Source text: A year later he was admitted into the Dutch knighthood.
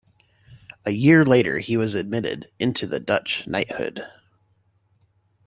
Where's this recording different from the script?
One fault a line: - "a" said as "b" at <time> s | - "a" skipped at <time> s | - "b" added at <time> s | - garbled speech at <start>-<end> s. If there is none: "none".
none